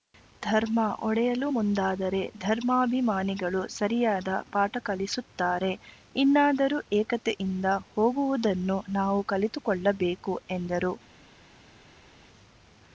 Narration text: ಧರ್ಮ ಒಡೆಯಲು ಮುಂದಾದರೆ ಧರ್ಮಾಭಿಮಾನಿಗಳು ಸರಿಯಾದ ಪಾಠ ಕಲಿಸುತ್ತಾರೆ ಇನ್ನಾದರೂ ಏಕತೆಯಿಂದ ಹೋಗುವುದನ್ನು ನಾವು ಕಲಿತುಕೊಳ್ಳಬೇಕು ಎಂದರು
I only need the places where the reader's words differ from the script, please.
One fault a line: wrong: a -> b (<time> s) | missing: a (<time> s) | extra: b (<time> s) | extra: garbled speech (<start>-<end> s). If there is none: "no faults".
no faults